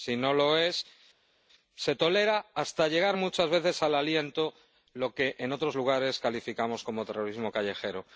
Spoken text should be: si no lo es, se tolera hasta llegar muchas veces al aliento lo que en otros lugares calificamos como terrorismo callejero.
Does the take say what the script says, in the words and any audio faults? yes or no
yes